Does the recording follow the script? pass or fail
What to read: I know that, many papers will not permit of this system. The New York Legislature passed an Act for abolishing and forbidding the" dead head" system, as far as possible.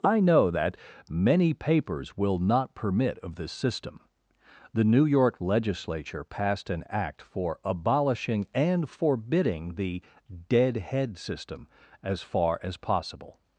pass